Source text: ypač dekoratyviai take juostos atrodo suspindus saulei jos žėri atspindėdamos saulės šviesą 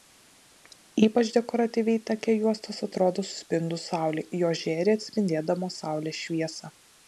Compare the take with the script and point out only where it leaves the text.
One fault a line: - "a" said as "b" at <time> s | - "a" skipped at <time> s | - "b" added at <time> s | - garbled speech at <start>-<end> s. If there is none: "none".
none